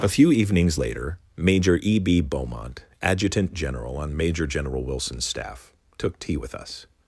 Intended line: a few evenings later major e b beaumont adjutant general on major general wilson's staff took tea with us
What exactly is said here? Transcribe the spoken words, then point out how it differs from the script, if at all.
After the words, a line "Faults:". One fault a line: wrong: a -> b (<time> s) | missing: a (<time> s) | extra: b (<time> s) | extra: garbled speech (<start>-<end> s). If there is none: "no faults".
a few evenings later major e b beaumont adjutant general on major general wilson's staff took tea with us
Faults:
no faults